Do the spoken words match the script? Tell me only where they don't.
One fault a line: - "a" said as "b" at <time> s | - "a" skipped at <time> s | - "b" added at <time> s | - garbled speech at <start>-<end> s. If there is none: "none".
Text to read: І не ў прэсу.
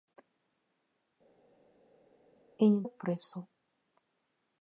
none